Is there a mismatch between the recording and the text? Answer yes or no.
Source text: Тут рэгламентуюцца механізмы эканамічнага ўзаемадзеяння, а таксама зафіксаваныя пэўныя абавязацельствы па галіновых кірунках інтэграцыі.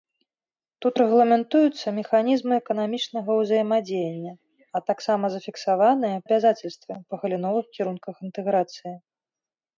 yes